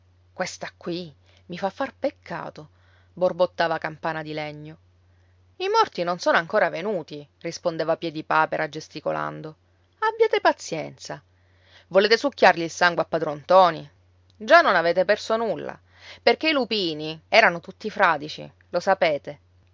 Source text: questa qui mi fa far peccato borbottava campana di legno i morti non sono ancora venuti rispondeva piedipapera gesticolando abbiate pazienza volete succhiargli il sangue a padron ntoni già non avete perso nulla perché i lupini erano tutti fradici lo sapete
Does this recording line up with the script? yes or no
yes